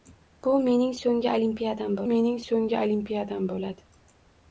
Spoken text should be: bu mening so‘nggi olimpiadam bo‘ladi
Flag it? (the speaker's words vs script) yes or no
yes